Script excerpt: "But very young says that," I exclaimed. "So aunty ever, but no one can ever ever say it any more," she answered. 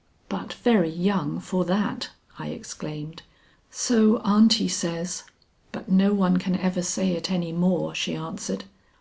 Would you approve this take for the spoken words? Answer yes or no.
no